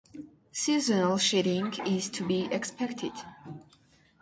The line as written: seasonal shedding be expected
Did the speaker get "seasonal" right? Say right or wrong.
right